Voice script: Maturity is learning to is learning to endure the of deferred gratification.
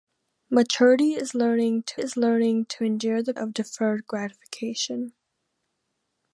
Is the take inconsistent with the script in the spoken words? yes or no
no